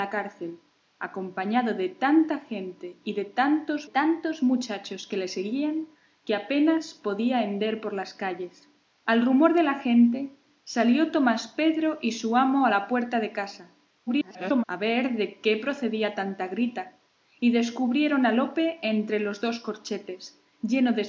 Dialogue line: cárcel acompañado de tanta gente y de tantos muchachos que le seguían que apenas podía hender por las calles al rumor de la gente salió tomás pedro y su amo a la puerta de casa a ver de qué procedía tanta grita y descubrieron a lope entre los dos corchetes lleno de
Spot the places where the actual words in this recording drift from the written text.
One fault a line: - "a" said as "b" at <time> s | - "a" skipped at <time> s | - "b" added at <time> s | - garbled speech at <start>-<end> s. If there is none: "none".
- "tantos" added at 3.8 s
- garbled speech at 14.1-14.6 s